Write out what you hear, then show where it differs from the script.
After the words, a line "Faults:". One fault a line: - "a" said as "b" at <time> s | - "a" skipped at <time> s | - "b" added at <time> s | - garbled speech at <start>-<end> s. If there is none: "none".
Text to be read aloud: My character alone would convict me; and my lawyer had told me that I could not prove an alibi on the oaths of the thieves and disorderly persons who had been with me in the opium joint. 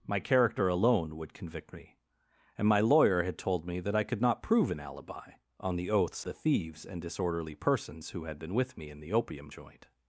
My character alone would convict me; and my lawyer had told me that I could not prove an alibi on the oaths the thieves and disorderly persons who had been with me in the opium joint.
Faults:
- "of" skipped at 6.2 s